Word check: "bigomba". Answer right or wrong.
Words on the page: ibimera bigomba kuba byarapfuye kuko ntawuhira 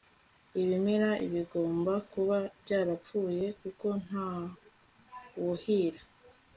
right